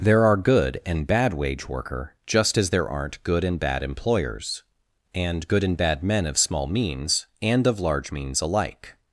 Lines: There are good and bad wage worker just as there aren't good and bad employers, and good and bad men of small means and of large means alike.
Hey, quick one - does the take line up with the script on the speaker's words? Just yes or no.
yes